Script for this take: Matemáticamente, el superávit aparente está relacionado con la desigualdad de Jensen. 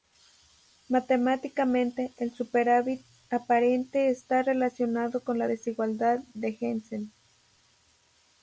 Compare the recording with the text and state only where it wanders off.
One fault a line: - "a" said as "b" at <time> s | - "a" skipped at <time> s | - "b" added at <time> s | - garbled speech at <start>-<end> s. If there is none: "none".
none